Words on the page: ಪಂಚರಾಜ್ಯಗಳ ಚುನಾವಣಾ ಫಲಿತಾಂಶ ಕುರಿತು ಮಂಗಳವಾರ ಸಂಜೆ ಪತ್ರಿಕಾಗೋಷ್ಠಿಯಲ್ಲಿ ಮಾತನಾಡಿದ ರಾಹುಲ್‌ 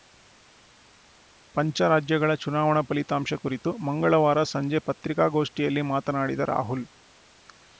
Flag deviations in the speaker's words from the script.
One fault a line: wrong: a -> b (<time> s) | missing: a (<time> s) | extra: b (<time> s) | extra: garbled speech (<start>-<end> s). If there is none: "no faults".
no faults